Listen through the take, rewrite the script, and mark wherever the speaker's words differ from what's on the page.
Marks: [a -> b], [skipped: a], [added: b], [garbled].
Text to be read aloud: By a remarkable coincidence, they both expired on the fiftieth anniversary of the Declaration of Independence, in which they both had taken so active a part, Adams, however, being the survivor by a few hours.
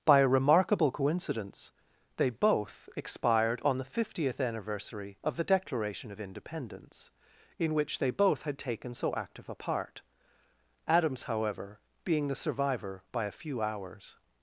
By a remarkable coincidence, they both expired on the fiftieth anniversary of the Declaration of Independence, in which they both had taken so active a part, Adams, however, being the survivor by a few hours.